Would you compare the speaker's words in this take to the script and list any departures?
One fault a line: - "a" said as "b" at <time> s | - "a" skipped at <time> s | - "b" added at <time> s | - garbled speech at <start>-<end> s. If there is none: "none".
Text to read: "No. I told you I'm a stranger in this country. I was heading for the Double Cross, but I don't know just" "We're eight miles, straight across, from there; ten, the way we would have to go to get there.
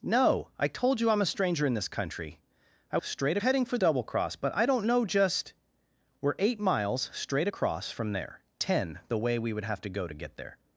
- "was" said as "straight" at 3.0 s
- "the" skipped at 3.8 s